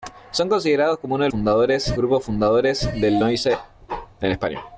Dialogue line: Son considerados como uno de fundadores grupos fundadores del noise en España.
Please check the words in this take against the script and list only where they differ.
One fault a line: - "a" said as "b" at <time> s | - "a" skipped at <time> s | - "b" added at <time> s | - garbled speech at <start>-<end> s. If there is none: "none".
none